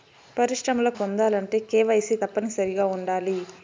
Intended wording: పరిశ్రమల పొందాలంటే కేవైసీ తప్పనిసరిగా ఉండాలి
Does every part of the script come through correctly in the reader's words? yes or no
yes